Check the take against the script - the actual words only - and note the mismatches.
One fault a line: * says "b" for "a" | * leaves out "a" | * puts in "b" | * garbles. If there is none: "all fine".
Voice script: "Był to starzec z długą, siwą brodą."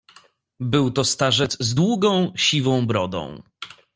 all fine